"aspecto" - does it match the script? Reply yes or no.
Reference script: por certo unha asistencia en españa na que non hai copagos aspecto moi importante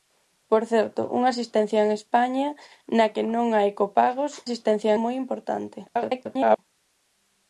no